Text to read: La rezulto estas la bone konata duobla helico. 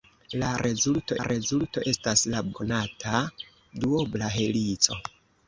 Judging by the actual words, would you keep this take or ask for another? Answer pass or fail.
fail